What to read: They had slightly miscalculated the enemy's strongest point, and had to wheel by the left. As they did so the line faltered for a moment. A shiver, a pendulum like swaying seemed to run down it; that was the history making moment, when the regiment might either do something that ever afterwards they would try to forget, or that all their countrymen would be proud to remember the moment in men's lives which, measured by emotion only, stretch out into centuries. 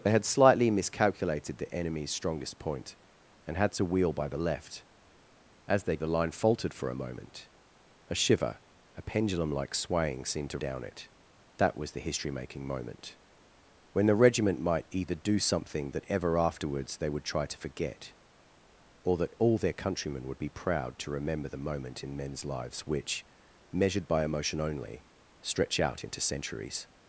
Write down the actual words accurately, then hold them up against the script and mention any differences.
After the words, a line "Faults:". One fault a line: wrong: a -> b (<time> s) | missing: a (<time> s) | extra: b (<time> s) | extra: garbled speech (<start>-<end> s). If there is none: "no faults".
They had slightly miscalculated the enemy's strongest point, and had to wheel by the left. As they the line faltered for a moment. A shiver, a pendulum like swaying seemed to down it; that was the history making moment, when the regiment might either do something that ever afterwards they would try to forget, or that all their countrymen would be proud to remember the moment in men's lives which, measured by emotion only, stretch out into centuries.
Faults:
missing: did so (6.0 s)
missing: run (10.6 s)